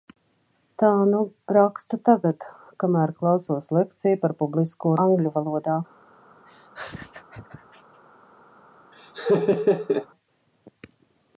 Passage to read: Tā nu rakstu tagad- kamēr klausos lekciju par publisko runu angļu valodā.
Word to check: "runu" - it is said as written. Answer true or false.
false